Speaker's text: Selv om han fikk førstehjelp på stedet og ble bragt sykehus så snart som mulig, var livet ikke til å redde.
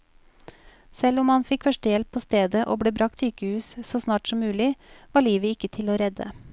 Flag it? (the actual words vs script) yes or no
no